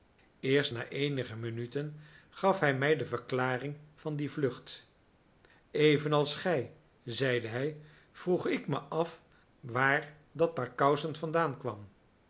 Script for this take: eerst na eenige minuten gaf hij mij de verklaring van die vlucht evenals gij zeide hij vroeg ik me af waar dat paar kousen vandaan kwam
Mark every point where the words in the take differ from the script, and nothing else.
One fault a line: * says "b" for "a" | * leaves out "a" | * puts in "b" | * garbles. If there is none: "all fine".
all fine